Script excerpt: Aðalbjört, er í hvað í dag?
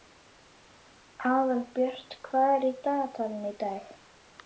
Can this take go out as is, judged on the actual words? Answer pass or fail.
fail